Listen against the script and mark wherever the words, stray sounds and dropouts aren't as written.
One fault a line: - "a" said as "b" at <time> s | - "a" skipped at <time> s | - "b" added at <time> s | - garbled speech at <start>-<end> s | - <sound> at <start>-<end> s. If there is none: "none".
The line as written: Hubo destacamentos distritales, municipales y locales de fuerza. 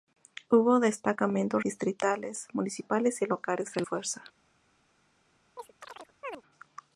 - chirp at 5.6-6.4 s